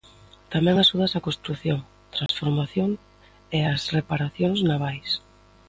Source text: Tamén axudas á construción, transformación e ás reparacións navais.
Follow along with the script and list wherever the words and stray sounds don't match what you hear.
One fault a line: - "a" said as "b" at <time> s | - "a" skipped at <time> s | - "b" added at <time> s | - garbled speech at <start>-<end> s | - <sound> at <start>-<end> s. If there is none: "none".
- dropout at 2.3-2.3 s